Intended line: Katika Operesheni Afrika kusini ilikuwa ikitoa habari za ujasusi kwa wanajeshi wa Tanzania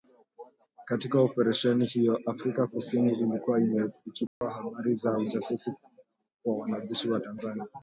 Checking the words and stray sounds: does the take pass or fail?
fail